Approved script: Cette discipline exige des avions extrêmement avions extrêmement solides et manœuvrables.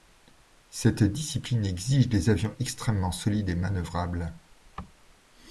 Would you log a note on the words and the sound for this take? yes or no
yes